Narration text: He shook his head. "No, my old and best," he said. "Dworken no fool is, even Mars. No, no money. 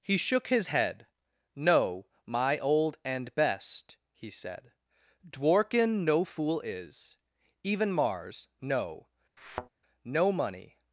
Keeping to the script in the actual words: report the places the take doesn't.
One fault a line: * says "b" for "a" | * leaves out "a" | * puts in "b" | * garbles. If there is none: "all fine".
all fine